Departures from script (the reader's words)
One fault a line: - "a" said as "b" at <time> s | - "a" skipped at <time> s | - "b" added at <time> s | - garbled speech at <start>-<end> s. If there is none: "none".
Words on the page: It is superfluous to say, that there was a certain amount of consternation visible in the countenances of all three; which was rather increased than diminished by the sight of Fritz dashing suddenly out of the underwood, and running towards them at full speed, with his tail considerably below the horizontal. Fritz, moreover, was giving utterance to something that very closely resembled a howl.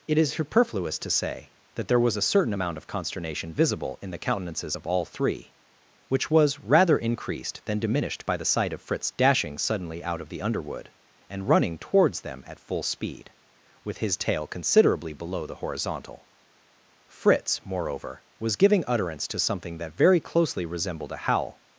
none